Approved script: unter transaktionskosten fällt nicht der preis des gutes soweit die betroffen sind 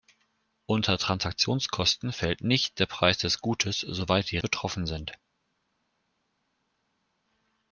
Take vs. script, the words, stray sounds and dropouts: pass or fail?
pass